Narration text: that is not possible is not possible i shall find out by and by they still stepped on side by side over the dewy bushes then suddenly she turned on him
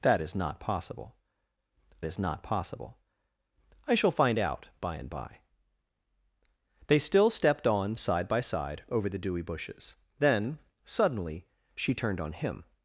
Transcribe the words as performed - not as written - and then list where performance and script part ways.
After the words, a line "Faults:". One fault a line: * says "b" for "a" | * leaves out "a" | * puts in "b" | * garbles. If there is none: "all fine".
that is not possible is not possible i shall find out by and by they still stepped on side by side over the dewy bushes then suddenly she turned on him
Faults:
all fine